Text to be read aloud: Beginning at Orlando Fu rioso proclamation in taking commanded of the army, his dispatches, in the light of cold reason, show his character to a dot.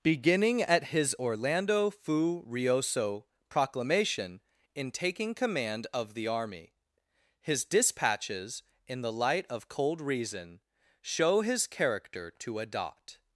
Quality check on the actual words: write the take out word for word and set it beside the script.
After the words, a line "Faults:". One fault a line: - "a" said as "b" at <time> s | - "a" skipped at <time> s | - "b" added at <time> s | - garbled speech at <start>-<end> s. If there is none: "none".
Beginning at his Orlando Fu rioso proclamation in taking command of the army, his dispatches, in the light of cold reason, show his character to a dot.
Faults:
- "his" added at 0.8 s
- "commanded" said as "command" at 5.3 s